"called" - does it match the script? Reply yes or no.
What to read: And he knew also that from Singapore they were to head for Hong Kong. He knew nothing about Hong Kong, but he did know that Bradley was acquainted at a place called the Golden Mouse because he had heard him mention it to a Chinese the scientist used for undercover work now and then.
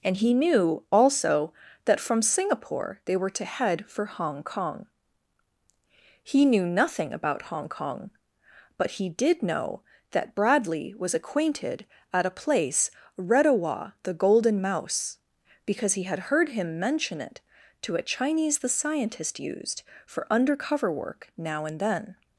no